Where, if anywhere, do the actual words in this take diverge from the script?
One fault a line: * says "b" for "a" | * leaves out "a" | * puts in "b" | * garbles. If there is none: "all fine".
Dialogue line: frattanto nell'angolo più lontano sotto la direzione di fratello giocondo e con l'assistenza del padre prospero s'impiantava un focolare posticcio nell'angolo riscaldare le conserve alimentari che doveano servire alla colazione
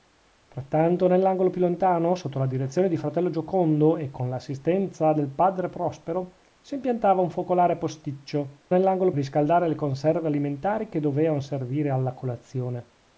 all fine